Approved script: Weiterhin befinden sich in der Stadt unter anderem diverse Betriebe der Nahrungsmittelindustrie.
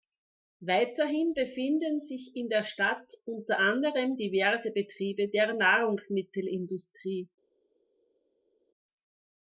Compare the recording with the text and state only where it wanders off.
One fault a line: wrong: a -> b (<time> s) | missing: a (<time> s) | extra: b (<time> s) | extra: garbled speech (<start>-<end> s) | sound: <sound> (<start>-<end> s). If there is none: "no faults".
no faults